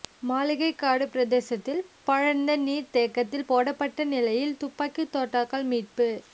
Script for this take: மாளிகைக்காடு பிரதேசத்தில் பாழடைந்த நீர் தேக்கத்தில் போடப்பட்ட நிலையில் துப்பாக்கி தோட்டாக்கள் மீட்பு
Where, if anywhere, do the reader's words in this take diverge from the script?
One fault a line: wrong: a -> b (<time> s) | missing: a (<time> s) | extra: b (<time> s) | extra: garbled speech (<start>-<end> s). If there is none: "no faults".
no faults